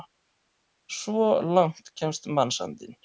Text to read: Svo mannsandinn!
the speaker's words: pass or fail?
fail